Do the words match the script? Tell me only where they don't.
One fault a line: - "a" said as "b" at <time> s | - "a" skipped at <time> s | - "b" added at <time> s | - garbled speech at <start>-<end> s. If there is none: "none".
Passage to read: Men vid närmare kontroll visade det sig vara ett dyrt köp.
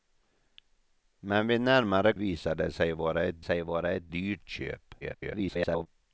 - "kontroll" skipped at 2.1 s
- "sig vara ett" added at 3.4 s
- garbled speech at 5.0-5.9 s